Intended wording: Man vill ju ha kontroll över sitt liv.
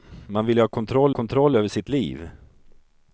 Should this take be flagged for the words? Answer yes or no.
yes